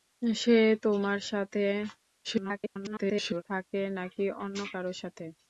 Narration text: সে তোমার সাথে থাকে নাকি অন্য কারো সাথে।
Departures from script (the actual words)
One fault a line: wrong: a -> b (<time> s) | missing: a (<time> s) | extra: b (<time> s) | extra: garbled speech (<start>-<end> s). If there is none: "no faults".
extra: garbled speech (2.2-3.4 s)